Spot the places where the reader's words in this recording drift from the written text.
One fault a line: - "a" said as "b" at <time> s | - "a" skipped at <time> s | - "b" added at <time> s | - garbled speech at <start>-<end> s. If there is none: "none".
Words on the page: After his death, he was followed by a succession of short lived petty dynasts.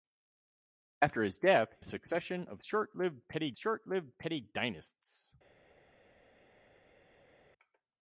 - "was followed by a succession of" said as "a succession of short lived petty" at 1.8 s